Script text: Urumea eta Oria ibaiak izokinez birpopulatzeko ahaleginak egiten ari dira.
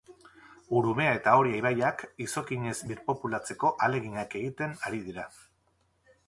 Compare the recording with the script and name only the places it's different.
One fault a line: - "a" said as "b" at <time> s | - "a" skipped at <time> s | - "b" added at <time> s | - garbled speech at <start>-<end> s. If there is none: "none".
none